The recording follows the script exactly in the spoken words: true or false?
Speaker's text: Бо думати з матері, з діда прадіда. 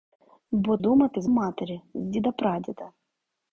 true